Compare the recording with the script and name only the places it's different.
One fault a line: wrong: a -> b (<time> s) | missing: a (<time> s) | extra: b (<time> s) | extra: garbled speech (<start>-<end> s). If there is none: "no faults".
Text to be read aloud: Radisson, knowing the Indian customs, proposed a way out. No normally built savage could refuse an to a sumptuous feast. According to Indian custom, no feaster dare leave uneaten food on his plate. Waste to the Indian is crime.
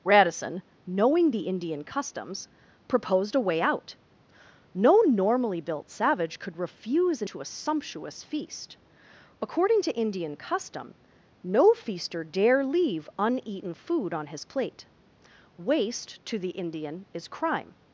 no faults